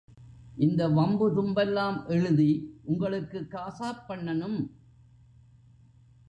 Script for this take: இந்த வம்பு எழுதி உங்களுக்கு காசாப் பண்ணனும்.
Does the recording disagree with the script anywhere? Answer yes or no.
yes